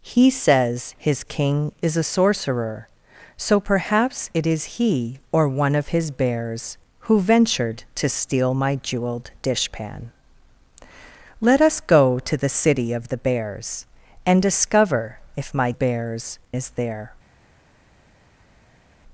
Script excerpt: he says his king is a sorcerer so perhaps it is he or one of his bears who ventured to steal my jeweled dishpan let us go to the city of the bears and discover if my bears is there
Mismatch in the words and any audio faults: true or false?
false